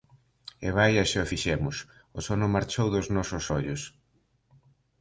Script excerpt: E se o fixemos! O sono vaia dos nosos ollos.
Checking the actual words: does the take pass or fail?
fail